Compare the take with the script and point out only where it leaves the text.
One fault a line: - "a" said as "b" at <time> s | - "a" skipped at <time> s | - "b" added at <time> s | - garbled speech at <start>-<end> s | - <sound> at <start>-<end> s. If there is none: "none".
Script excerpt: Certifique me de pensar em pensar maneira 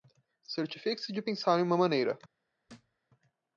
- "me" said as "se" at 1.0 s
- "pensar" said as "uma" at 1.6 s
- thud at 2.7-3.0 s